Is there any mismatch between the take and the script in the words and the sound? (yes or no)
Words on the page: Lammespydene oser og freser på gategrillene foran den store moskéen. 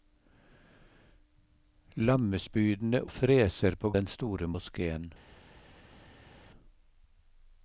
yes